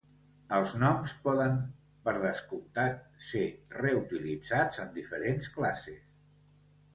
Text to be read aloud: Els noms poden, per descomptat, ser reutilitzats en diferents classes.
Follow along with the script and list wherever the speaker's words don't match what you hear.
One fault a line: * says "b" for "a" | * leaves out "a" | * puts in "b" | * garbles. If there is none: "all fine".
all fine